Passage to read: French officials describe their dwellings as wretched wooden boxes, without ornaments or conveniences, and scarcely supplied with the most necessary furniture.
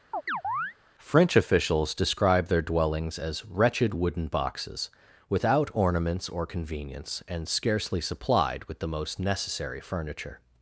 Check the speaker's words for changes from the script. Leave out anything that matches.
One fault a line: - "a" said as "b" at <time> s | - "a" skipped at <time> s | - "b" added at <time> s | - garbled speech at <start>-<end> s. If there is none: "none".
- "conveniences" said as "convenience" at 6.5 s